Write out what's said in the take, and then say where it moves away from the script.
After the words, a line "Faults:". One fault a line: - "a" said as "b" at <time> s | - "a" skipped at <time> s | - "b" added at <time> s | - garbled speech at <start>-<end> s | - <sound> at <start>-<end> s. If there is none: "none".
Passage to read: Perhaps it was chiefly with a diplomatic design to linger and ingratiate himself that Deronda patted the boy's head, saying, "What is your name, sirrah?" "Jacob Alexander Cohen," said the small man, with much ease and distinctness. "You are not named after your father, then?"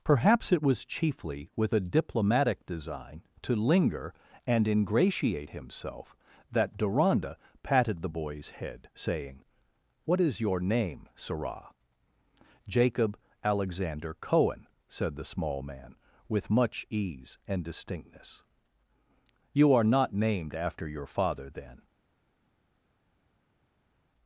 Perhaps it was chiefly with a diplomatic design to linger and ingratiate himself that Deronda patted the boy's head, saying, "What is your name, sirrah?" "Jacob Alexander Cohen," said the small man, with much ease and distinctness. "You are not named after your father, then?"
Faults:
none